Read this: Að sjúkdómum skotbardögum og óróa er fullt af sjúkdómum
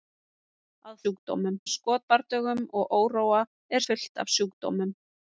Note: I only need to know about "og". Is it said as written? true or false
true